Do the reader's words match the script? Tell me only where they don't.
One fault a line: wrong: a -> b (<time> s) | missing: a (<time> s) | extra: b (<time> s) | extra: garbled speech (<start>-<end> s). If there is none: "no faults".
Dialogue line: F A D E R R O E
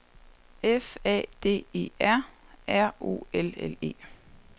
extra: L L (3.3 s)